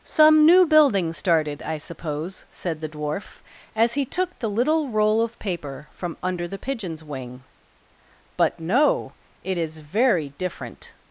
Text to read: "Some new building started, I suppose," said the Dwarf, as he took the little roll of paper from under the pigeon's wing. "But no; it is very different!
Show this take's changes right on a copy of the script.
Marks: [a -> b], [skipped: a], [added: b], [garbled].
"Some new building started, I suppose," said the Dwarf, as he took the little roll of paper from under the pigeon's wing. "But no; it is very different!